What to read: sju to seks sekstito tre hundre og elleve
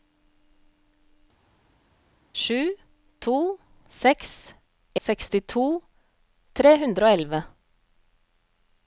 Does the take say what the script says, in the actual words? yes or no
yes